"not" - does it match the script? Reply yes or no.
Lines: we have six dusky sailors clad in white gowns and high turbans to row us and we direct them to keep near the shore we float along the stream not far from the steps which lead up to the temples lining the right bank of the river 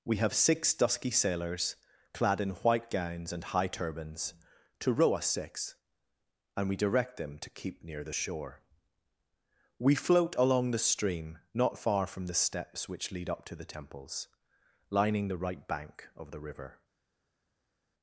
yes